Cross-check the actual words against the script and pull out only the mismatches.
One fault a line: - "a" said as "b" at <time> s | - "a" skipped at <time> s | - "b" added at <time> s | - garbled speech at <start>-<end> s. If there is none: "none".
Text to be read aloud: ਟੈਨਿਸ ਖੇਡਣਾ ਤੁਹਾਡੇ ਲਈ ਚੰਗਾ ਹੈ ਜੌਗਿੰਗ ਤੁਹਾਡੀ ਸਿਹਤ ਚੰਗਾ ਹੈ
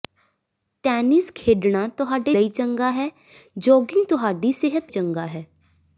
none